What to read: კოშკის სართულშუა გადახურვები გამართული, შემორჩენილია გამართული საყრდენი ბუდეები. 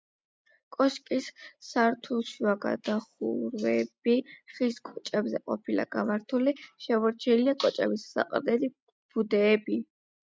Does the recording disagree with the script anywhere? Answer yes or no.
yes